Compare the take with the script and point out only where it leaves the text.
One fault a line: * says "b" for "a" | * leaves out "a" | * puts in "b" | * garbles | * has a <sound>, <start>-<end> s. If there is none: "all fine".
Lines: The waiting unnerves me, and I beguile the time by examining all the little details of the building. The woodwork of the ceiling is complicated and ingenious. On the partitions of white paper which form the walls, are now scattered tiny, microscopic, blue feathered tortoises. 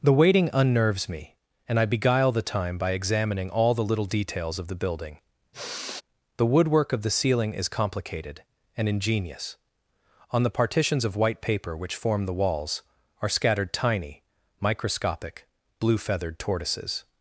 * has a sigh, 5.5-6.0 s
* leaves out "now"